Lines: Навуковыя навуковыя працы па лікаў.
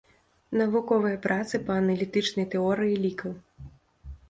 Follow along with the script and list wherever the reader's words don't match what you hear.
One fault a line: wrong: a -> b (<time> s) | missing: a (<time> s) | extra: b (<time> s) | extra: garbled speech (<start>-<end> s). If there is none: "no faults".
missing: навуковыя (1.2 s)
extra: аналітычнай тэорыі (1.8 s)